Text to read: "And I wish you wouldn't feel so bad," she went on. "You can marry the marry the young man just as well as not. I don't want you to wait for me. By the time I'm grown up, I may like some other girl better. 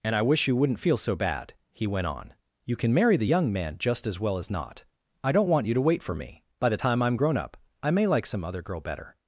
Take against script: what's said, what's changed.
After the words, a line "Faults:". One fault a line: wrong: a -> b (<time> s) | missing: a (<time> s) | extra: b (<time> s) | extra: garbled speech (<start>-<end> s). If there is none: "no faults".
"And I wish you wouldn't feel so bad," he went on. "You can marry the young man just as well as not. I don't want you to wait for me. By the time I'm grown up, I may like some other girl better.
Faults:
wrong: she -> he (1.7 s)
missing: marry the (3.3 s)